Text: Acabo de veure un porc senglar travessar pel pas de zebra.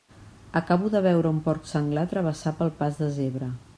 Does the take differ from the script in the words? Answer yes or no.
no